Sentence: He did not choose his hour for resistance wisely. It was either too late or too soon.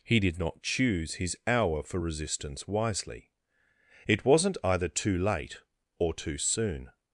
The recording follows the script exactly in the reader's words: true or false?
false